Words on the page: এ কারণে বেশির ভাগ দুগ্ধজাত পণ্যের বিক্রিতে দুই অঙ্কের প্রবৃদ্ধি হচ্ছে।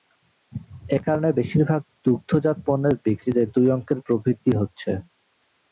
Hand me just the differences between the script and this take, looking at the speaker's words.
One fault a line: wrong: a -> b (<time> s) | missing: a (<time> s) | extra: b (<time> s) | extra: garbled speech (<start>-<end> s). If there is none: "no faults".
no faults